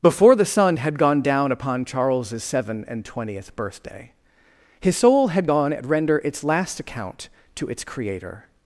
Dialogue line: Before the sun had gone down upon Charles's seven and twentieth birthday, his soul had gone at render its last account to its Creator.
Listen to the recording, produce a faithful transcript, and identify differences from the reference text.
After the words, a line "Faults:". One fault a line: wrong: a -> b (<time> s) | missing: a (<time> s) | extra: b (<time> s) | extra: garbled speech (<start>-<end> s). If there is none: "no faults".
Before the sun had gone down upon Charles's seven and twentieth birthday, his soul had gone at render its last account to its Creator.
Faults:
no faults